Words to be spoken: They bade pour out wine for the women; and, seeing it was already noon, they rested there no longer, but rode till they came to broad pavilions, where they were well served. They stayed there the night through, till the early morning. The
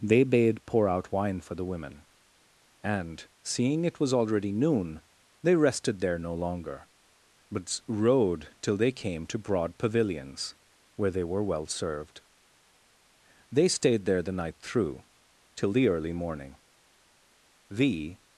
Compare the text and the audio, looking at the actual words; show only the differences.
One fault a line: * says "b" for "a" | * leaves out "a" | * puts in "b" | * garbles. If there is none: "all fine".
all fine